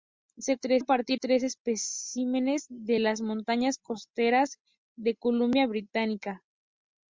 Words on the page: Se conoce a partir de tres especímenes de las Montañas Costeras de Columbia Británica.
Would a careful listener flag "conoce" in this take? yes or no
yes